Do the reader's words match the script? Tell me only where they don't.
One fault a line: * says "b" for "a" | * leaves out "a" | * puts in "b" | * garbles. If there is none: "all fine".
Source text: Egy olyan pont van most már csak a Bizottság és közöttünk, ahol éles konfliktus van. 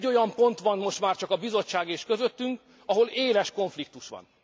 all fine